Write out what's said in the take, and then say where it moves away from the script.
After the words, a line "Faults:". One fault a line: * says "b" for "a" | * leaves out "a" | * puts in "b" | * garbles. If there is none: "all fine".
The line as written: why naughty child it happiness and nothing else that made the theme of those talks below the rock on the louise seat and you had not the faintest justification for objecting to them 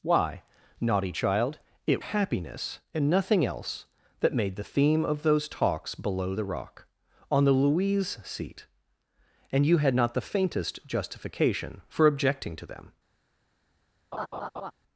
why naughty child it happiness and nothing else that made the theme of those talks below the rock on the louise seat and you had not the faintest justification for objecting to them
Faults:
all fine